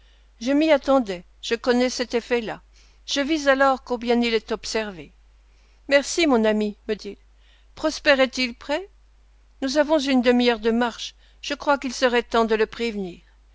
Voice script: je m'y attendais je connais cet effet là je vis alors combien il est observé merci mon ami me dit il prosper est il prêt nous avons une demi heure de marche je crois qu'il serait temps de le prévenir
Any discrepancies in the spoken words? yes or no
yes